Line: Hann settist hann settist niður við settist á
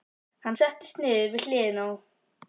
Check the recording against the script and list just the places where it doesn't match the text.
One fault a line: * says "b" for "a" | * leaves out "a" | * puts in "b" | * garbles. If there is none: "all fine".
* leaves out "hann settist"
* says "hliðina" for "settist"